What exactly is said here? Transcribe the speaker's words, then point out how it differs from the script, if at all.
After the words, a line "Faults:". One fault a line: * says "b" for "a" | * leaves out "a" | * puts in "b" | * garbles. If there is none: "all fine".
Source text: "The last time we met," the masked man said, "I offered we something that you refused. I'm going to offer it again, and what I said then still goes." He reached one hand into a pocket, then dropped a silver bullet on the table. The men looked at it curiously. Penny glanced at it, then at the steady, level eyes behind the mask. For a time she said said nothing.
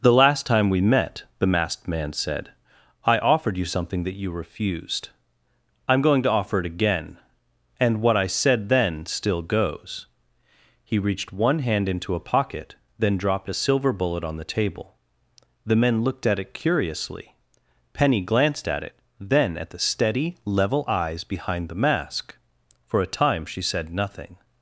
"The last time we met," the masked man said, "I offered you something that you refused. I'm going to offer it again, and what I said then still goes." He reached one hand into a pocket, then dropped a silver bullet on the table. The men looked at it curiously. Penny glanced at it, then at the steady, level eyes behind the mask. For a time she said nothing.
Faults:
* says "you" for "we"
* leaves out "said"